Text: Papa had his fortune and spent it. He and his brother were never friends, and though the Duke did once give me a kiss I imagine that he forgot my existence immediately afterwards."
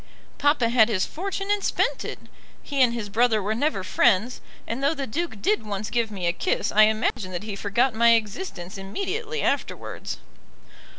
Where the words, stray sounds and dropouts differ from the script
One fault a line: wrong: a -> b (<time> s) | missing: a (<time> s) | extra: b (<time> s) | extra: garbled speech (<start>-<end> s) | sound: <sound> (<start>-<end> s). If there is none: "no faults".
sound: dropout (7.1-7.2 s)